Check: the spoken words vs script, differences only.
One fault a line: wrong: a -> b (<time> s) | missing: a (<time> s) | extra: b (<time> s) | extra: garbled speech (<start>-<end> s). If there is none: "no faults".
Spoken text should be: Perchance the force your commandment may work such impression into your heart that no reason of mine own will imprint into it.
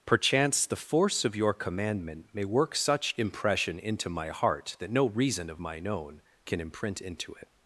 extra: of (1.2 s)
wrong: your -> my (4.1 s)
wrong: will -> can (6.4 s)